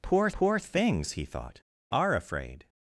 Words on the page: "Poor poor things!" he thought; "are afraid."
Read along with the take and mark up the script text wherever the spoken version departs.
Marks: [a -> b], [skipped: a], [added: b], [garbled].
"Poor poor things!" he thought; "are afraid."